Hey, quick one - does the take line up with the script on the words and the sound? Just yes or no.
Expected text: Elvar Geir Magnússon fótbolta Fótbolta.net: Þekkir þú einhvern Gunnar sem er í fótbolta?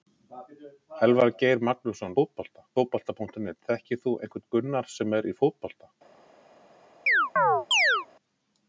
no